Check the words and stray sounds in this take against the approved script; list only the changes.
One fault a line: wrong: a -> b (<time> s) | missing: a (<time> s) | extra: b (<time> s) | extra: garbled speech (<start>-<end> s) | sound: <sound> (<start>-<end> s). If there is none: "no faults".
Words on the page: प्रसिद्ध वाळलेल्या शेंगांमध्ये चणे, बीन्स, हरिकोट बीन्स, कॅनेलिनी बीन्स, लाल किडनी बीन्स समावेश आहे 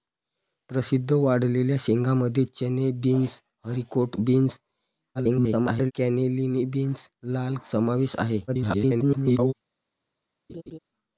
extra: garbled speech (5.1-5.9 s)
missing: किडनी बीन्स (7.6 s)
extra: garbled speech (8.5-9.5 s)
sound: laugh (10.5-10.8 s)